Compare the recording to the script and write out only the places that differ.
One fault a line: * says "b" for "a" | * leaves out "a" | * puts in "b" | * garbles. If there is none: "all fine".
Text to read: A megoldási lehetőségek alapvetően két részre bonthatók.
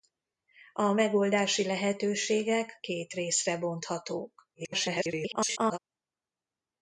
* leaves out "alapvetően"
* garbles